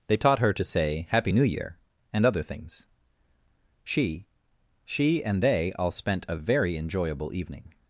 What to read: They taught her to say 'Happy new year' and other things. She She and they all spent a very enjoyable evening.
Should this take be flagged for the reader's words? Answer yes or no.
no